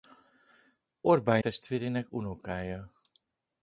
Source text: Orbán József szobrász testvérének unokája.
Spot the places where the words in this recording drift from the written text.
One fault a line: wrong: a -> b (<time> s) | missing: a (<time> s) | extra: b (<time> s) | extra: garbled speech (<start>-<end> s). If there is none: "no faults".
missing: József szobrász (1.4 s)